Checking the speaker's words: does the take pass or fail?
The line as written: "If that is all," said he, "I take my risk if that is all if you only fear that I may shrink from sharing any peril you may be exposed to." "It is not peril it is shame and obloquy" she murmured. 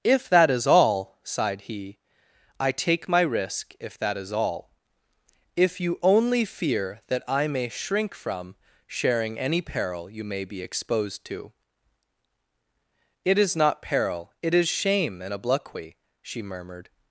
fail